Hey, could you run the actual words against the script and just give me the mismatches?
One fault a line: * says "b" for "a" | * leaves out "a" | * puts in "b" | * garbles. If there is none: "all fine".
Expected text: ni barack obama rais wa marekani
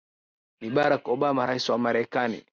all fine